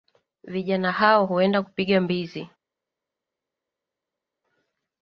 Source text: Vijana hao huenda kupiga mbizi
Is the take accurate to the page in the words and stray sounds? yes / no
yes